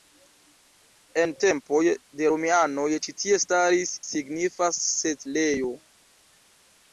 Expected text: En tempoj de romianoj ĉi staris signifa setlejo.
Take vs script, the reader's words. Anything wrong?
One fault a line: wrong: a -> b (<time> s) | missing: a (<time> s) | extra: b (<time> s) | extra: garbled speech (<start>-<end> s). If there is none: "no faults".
extra: tie (3.2 s)